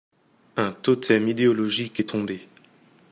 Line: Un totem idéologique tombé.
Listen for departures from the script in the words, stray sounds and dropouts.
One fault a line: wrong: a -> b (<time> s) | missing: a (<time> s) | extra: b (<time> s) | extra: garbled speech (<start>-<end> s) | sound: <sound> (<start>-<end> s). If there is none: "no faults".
extra: est (2.0 s)